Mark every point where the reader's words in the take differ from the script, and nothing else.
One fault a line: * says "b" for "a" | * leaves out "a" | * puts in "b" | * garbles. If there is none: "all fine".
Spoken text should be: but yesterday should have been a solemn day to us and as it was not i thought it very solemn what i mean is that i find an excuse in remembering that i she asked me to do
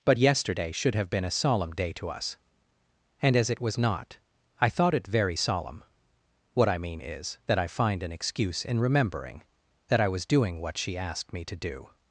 * puts in "was doing what"